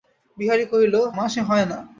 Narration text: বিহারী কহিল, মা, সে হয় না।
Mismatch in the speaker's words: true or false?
false